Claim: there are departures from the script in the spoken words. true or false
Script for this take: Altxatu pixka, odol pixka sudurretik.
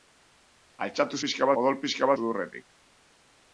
false